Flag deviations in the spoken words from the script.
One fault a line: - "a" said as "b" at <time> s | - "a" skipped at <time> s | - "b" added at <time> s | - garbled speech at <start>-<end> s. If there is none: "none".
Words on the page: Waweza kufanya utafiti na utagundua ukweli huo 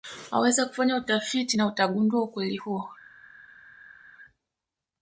none